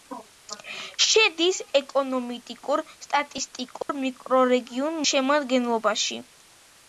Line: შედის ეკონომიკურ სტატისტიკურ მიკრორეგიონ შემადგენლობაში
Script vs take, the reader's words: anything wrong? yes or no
no